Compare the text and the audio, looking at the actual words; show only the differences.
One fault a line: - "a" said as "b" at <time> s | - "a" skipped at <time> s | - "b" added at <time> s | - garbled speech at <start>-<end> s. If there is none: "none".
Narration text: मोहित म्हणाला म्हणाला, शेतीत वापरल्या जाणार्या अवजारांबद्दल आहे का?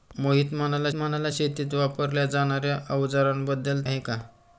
none